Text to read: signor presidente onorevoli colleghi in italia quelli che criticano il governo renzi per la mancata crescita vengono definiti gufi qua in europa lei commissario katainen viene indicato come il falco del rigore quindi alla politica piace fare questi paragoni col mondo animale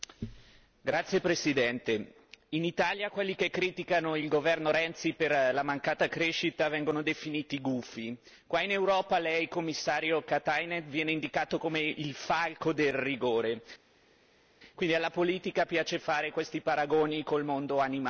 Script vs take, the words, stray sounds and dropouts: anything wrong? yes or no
no